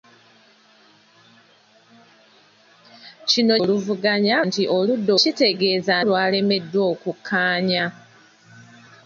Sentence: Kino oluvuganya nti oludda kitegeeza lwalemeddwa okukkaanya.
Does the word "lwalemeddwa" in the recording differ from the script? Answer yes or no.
no